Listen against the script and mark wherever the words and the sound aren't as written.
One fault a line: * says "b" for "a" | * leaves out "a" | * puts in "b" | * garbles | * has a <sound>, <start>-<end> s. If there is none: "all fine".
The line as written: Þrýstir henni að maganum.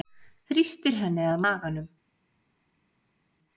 all fine